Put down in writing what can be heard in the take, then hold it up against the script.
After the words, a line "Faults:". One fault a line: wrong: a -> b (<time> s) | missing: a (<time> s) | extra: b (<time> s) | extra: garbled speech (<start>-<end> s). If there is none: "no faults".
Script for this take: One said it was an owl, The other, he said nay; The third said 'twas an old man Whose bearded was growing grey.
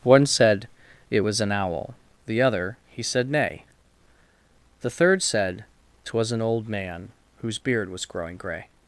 One said it was an owl, The other, he said nay; The third said 'twas an old man Whose beard was growing grey.
Faults:
wrong: bearded -> beard (7.6 s)